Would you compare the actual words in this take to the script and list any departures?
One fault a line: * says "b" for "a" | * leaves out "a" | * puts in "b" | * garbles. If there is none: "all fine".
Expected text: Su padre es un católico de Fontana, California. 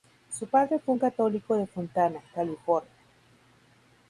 * says "fue" for "es"